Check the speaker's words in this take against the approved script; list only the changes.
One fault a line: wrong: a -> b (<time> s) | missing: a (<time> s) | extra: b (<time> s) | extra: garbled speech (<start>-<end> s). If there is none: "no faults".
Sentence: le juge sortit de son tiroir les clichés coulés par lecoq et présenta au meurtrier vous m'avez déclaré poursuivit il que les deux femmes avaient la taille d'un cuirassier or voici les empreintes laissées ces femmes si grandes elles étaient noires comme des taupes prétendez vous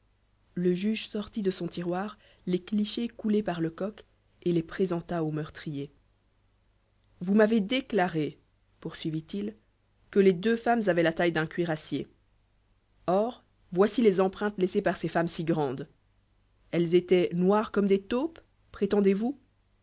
extra: les (4.5 s)
extra: par (14.8 s)